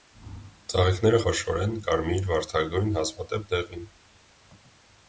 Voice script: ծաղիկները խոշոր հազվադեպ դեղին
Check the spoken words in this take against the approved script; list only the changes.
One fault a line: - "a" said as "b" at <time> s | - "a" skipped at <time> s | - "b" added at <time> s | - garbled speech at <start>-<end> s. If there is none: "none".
- "են կարմիր վարդագույն" added at 1.6 s